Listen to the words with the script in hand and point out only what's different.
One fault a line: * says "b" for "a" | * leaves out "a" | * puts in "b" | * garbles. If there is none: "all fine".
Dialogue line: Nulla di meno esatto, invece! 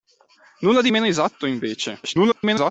* garbles